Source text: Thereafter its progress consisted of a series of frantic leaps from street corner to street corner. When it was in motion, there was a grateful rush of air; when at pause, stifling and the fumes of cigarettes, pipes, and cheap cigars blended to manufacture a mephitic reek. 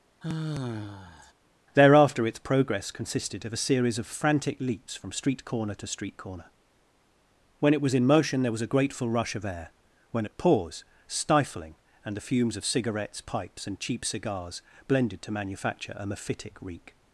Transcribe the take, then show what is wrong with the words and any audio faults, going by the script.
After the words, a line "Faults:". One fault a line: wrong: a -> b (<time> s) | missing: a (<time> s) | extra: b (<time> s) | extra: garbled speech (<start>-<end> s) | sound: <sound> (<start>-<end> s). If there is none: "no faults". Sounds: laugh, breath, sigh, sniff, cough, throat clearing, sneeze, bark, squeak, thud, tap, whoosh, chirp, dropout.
Thereafter its progress consisted of a series of frantic leaps from street corner to street corner. When it was in motion, there was a grateful rush of air; when at pause, stifling and the fumes of cigarettes, pipes, and cheap cigars blended to manufacture a mephitic reek.
Faults:
sound: sigh (0.2-1.3 s)